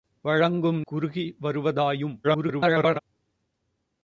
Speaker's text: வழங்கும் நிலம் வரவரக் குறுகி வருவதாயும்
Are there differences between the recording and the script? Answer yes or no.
yes